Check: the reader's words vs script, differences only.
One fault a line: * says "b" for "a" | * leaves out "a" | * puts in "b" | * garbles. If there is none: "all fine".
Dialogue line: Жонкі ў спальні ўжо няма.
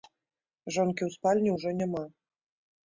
all fine